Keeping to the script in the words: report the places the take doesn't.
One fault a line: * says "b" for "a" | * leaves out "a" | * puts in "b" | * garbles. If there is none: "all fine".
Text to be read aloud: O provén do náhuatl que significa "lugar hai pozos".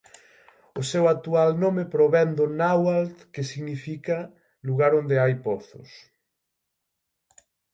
* puts in "seu actual nome"
* puts in "onde"